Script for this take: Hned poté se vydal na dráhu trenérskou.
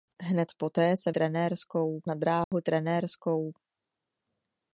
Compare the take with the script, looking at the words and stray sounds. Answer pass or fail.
fail